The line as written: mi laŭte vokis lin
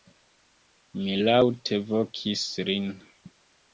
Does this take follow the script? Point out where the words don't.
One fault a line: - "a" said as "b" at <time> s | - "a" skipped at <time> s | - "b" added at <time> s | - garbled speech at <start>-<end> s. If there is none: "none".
none